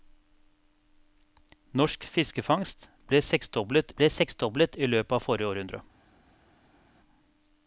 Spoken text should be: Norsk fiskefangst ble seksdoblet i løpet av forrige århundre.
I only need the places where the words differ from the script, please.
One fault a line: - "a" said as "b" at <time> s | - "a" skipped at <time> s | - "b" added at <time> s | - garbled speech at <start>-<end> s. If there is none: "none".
- "ble seksdoblet" added at 4.0 s